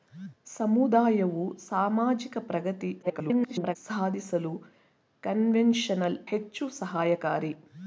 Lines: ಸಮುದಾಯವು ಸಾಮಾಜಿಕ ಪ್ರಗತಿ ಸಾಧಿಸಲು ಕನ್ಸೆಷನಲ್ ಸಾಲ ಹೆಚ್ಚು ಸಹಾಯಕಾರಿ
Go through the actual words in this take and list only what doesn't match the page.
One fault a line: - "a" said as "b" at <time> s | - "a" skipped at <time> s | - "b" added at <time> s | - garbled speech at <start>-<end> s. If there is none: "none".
- garbled speech at 3.0-3.8 s
- "ಸಾಲ" skipped at 6.2 s